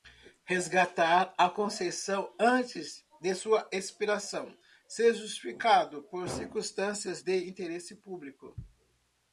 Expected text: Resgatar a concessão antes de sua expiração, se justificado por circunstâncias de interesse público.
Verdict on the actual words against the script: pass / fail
pass